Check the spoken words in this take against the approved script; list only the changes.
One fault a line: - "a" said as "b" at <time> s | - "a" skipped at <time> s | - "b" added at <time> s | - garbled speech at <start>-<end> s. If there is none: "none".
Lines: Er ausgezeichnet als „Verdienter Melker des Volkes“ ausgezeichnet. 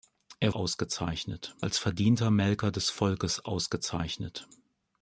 none